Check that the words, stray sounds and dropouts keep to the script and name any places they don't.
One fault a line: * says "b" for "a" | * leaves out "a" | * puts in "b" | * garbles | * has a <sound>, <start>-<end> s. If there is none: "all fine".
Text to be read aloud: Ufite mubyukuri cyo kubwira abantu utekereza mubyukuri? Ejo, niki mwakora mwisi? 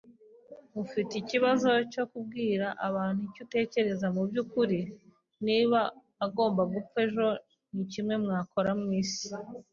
* says "ikibazo" for "mubyukuri"
* puts in "icyo"
* puts in "Niba agomba gupfa"